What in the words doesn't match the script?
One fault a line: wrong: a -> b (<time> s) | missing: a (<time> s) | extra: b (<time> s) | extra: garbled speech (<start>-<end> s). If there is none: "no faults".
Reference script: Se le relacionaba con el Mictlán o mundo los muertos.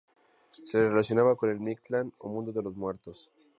extra: de (2.5 s)